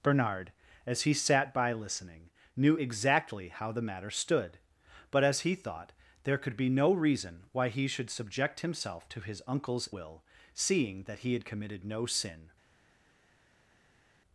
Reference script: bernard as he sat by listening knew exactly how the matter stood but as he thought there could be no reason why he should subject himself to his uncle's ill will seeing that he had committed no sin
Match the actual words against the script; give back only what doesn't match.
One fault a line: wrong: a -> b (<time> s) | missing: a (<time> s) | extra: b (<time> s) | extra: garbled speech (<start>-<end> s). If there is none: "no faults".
missing: ill (9.9 s)